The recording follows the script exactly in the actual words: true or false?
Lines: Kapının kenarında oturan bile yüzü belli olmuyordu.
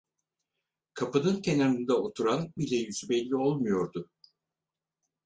true